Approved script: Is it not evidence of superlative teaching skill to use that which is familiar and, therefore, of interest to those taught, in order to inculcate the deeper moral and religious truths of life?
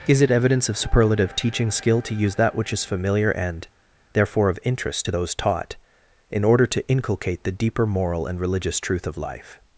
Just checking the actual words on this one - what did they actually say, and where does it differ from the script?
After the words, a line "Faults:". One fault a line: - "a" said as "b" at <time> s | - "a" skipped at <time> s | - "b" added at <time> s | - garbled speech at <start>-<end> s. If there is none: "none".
Is it evidence of superlative teaching skill to use that which is familiar and, therefore, of interest to those taught, in order to inculcate the deeper moral and religious truth of life?
Faults:
- "not" skipped at 0.3 s
- "truths" said as "truth" at 8.8 s